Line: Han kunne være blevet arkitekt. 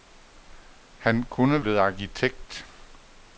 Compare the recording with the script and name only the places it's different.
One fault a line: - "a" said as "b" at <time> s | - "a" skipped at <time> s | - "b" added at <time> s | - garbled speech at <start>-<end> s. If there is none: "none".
- "være" skipped at 1.6 s